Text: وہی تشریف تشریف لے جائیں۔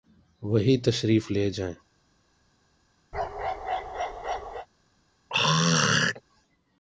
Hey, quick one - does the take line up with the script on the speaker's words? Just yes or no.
no